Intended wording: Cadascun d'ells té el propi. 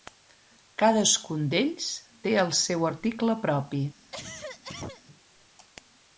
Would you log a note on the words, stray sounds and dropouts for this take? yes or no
yes